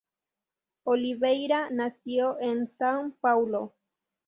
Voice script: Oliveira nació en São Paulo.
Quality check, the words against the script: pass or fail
pass